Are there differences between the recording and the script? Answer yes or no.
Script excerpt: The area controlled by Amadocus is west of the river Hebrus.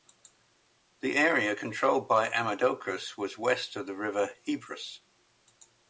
yes